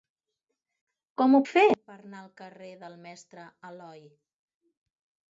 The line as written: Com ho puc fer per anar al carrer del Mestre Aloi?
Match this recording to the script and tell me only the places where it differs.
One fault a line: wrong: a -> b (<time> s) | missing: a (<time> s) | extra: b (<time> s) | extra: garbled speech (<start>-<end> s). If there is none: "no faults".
missing: puc (1.4 s)